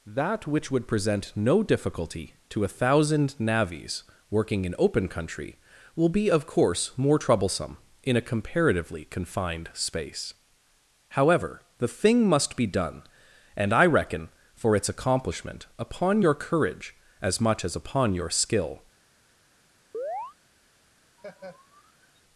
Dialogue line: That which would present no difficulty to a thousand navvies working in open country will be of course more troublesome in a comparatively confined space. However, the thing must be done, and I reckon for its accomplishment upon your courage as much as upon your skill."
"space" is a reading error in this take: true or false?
false